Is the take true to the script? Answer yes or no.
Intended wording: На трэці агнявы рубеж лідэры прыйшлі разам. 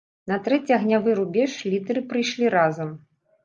yes